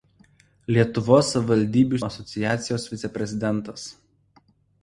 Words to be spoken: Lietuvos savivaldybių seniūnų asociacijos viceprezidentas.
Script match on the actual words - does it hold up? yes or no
no